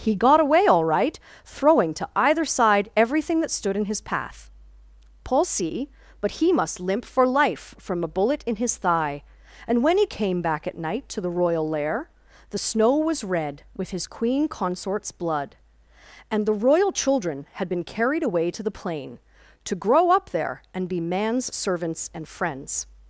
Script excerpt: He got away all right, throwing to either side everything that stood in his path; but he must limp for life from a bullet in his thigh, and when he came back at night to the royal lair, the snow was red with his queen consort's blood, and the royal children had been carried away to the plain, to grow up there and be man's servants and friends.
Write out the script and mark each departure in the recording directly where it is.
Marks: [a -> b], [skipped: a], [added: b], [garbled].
He got away all right, throwing to either side everything that stood in his path; [added: paul see] but he must limp for life from a bullet in his thigh, and when he came back at night to the royal lair, the snow was red with his queen consort's blood, and the royal children had been carried away to the plain, to grow up there and be man's servants and friends.